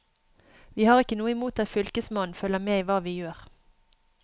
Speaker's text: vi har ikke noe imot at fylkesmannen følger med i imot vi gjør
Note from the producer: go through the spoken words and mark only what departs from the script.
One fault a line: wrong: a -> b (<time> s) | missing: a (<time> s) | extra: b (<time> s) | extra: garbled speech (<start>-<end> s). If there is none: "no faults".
wrong: imot -> hva (2.9 s)